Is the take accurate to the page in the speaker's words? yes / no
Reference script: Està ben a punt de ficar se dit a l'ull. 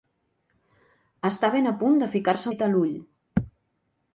yes